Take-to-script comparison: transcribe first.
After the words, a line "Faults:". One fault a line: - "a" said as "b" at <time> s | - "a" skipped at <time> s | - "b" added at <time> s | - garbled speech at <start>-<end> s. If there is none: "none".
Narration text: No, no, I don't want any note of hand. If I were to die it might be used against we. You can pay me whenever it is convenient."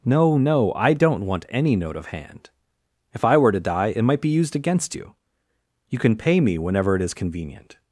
No, no, I don't want any note of hand. If I were to die it might be used against you. You can pay me whenever it is convenient."
Faults:
- "we" said as "you" at 4.9 s